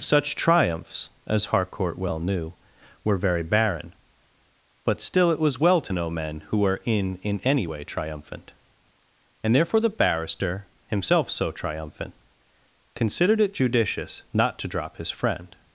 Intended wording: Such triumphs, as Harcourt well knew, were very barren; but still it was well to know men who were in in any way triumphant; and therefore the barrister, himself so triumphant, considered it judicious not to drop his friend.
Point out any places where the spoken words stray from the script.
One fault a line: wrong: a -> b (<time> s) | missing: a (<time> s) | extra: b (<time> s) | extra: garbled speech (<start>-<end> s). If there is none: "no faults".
no faults